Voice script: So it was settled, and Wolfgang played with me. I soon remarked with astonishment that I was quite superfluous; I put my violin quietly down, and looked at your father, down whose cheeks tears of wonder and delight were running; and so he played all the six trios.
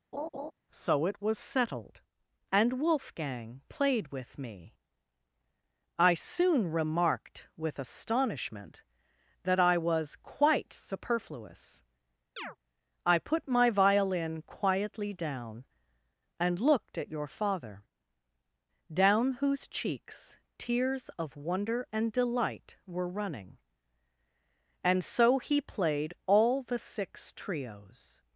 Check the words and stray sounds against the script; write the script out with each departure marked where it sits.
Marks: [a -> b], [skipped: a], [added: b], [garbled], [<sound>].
[laugh] So it was settled, and Wolfgang played with me. I soon remarked with astonishment that I was quite superfluous; [chirp] I put my violin quietly down, and looked at your father, down whose cheeks tears of wonder and delight were running; and so he played all the six trios.